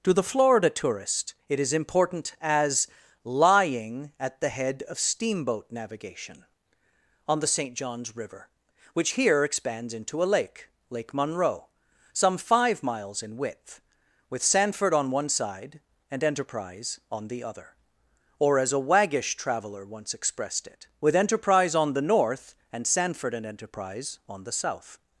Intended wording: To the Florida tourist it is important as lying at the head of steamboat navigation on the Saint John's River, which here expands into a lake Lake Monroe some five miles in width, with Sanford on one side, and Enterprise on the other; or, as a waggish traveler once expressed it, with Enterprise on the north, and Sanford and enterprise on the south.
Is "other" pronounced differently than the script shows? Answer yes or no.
no